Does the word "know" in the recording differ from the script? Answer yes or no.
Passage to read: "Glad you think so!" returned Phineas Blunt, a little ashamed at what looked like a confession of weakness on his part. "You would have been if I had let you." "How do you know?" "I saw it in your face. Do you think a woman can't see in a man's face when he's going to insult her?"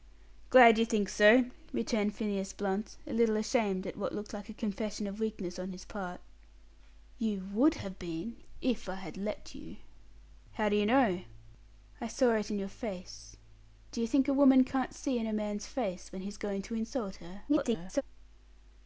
no